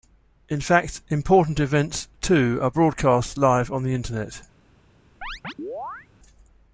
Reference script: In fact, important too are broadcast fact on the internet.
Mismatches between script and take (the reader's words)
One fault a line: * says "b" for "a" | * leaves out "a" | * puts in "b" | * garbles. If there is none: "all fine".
* puts in "events"
* says "live" for "fact"